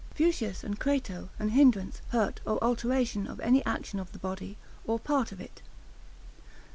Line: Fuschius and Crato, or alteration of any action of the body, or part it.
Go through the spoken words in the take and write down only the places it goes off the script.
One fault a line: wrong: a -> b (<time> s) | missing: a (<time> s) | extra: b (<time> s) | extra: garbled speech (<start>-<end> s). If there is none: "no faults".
extra: an hindrance hurt (1.4 s)
extra: of (5.3 s)